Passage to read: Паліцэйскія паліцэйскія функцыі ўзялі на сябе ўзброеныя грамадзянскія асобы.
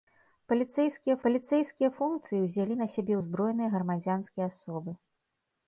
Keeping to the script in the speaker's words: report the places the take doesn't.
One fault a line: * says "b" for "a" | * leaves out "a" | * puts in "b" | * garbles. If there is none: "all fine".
all fine